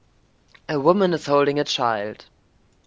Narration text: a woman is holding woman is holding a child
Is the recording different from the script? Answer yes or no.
yes